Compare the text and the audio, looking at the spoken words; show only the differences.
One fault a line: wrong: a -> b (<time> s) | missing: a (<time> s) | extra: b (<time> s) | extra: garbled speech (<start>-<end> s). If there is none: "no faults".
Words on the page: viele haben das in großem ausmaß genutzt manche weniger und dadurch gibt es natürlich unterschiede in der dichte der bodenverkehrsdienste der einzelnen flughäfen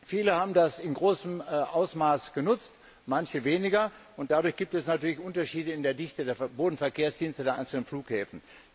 no faults